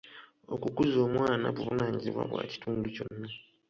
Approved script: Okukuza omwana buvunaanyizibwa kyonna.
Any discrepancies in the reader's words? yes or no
yes